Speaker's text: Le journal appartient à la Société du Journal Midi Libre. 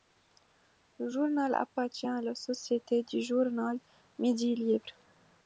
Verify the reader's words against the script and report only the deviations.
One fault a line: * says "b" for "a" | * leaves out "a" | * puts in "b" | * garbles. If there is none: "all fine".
all fine